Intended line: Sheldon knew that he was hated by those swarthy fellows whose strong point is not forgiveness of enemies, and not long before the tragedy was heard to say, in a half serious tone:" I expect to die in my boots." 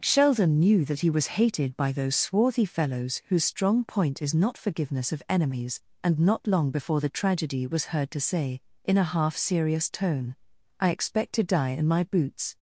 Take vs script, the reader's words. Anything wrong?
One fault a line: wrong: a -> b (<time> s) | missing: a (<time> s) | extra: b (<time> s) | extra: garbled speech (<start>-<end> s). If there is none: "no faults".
no faults